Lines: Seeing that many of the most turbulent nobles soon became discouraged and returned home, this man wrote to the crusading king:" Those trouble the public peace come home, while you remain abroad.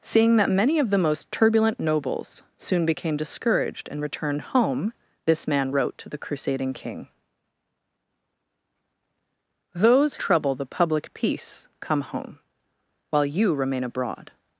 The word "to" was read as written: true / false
true